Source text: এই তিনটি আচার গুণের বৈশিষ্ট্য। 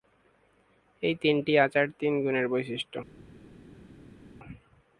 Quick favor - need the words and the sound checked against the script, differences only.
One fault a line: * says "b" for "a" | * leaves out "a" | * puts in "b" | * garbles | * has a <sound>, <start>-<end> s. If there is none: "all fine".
* puts in "তিন"